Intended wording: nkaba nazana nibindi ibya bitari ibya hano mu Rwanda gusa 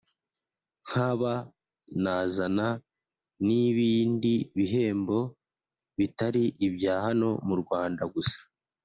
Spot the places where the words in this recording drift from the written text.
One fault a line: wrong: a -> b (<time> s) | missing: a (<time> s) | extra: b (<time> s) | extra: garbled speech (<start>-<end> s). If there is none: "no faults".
wrong: ibya -> bihembo (4.6 s)